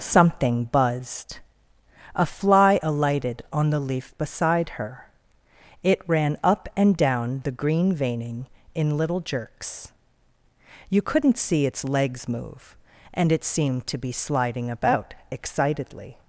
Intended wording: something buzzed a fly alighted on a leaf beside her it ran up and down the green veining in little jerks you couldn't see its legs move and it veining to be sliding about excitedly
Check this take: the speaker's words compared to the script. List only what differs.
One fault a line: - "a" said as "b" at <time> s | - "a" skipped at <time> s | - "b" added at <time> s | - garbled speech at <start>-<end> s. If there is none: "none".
- "a" said as "the" at 3.7 s
- "veining" said as "seemed" at 13.4 s